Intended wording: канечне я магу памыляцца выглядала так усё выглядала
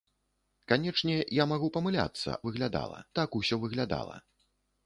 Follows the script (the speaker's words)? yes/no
yes